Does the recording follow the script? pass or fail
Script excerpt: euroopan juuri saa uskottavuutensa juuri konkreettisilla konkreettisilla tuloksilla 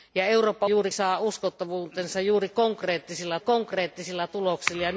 pass